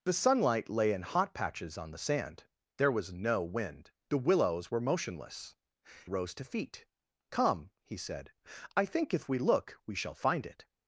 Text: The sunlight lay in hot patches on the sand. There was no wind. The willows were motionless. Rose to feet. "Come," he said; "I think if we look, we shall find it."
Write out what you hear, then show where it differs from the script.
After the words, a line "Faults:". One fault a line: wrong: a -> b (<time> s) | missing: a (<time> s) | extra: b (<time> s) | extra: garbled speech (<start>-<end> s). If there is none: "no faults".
The sunlight lay in hot patches on the sand. There was no wind. The willows were motionless. Rose to feet. "Come," he said; "I think if we look, we shall find it."
Faults:
no faults